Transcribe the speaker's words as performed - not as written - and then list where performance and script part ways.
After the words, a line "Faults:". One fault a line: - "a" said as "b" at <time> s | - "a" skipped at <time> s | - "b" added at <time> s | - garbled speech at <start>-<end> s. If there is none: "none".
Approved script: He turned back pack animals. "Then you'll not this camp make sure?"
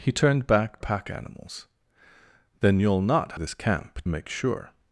He turned back pack animals. "Then you'll not this camp make sure?"
Faults:
none